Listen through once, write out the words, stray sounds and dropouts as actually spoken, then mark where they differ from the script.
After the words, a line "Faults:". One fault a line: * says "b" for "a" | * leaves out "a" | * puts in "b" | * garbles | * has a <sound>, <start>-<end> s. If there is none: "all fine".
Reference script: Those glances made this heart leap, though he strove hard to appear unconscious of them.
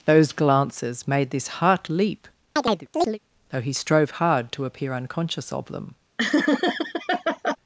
Those glances made this heart leap, though he strove hard to appear unconscious of them.
Faults:
* has a chirp, 2.6-3.2 s
* has a laugh, 6.2-7.6 s